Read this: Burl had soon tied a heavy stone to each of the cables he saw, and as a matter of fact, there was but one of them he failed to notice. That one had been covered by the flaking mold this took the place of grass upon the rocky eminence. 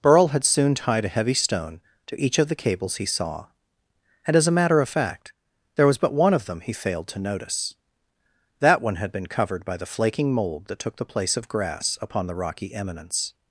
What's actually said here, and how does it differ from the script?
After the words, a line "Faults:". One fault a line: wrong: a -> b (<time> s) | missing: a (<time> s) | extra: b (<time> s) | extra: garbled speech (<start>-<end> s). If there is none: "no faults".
Burl had soon tied a heavy stone to each of the cables he saw, and as a matter of fact, there was but one of them he failed to notice. That one had been covered by the flaking mold that took the place of grass upon the rocky eminence.
Faults:
wrong: this -> that (10.7 s)